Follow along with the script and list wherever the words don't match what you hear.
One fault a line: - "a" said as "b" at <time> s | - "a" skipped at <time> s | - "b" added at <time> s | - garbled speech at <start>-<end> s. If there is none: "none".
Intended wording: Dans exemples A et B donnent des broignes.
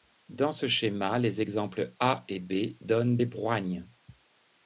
- "ce schéma les" added at 0.5 s